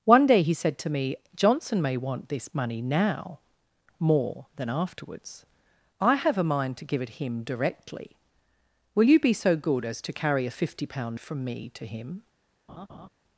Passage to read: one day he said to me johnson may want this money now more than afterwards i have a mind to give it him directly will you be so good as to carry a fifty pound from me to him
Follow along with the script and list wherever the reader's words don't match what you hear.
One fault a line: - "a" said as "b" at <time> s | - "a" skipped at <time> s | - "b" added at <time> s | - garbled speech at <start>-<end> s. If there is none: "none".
none